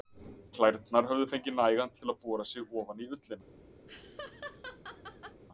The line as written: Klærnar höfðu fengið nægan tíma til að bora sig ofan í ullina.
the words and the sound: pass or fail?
fail